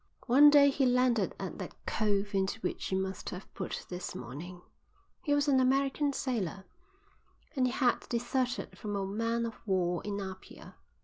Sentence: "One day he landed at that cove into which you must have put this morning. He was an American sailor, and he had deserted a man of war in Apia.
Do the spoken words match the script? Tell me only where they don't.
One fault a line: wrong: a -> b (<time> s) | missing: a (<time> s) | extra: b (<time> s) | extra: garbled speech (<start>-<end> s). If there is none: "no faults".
extra: from (8.8 s)